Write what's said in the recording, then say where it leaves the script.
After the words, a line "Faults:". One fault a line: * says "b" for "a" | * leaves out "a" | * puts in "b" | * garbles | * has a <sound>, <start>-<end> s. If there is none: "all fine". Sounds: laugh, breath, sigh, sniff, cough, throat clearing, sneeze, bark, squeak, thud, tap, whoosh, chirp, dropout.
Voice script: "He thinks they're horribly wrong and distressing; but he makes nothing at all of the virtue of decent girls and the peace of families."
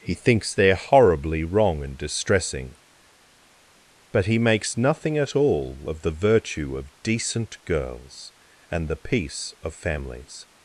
"He thinks they're horribly wrong and distressing; but he makes nothing at all of the virtue of decent girls and the peace of families."
Faults:
all fine